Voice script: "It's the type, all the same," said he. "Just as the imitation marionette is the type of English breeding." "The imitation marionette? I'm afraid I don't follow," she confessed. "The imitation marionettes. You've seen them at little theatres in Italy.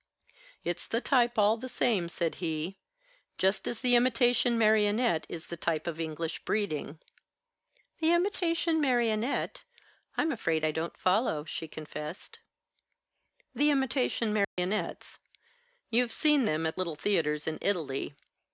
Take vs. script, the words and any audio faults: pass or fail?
fail